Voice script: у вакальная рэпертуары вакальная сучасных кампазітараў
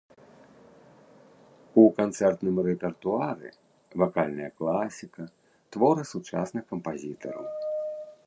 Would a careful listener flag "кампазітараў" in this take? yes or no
no